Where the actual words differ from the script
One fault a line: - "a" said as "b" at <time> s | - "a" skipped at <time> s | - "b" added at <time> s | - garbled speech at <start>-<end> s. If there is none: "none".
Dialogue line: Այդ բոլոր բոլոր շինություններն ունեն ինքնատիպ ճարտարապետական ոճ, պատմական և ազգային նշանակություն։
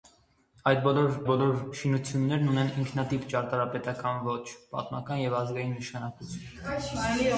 none